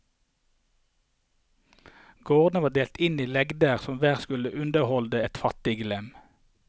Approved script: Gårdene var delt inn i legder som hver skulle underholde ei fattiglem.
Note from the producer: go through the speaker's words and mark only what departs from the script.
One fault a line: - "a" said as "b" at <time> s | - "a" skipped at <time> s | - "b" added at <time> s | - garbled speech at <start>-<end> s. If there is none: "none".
- "ei" said as "et" at 5.2 s